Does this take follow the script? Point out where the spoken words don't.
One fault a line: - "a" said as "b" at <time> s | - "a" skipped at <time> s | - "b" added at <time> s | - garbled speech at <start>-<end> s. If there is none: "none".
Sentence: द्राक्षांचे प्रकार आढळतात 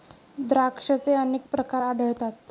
- "अनेक" added at 1.1 s